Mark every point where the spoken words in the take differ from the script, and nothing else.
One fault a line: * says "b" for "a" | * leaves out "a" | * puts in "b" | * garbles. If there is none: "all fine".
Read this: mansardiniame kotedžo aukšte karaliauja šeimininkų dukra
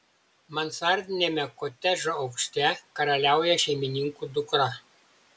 all fine